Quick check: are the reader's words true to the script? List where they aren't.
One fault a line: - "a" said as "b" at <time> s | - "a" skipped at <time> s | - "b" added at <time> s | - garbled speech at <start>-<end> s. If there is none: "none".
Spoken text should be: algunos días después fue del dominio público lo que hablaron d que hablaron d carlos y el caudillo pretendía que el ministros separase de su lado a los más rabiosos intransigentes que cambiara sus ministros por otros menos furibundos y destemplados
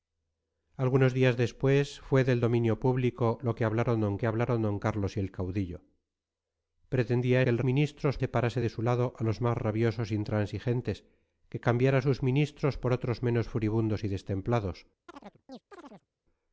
none